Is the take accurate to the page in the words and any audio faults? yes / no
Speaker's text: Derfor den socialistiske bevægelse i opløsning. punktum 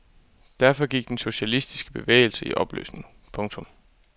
no